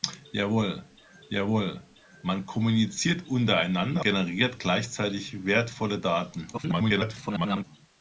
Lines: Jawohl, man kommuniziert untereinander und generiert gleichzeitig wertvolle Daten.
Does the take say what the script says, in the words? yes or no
no